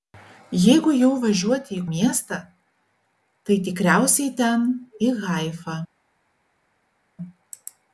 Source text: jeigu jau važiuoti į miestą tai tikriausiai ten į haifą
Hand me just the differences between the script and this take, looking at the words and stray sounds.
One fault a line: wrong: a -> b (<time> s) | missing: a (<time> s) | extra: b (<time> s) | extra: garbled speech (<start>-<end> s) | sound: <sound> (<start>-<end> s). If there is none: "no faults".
no faults